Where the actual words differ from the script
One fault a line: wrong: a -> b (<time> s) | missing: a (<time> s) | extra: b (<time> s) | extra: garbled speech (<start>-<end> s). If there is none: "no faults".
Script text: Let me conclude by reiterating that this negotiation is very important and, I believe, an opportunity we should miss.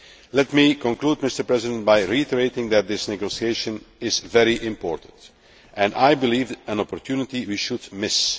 no faults